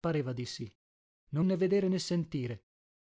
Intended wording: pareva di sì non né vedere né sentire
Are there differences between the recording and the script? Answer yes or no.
no